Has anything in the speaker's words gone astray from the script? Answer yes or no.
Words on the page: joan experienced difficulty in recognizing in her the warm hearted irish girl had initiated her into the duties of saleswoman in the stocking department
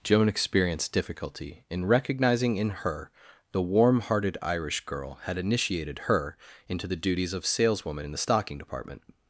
no